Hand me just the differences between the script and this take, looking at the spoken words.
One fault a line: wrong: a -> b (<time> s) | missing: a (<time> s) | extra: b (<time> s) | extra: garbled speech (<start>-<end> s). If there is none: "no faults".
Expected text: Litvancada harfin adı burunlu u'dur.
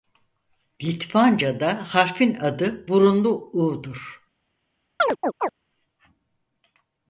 no faults